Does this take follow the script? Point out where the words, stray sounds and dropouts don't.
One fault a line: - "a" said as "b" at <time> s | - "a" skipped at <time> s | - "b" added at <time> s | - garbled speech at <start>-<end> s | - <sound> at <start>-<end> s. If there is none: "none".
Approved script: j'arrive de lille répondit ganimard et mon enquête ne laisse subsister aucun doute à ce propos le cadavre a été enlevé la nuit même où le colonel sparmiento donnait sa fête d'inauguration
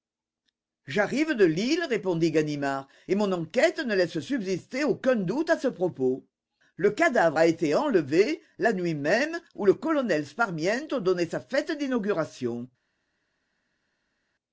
none